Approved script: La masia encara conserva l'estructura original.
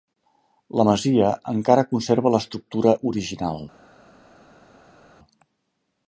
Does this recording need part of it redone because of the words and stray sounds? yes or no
no